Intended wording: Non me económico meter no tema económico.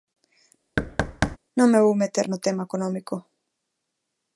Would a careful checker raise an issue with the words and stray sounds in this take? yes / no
yes